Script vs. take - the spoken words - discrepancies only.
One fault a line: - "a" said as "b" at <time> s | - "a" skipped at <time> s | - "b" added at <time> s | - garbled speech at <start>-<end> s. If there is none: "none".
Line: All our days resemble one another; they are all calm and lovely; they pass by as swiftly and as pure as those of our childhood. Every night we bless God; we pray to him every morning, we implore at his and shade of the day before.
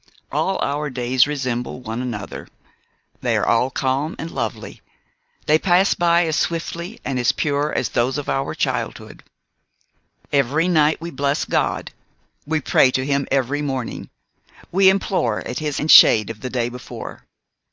none